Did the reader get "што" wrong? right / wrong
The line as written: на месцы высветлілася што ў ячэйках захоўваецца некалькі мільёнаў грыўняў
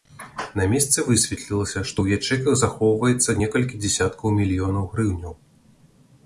right